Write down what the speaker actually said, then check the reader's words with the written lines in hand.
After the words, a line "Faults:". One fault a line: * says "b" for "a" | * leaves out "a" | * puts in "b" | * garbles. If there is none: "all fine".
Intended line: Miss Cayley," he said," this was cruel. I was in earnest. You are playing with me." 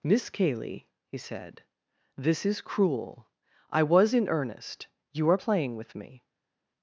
Miss Cayley," he said," this is cruel. I was in earnest. You are playing with me."
Faults:
* says "is" for "was"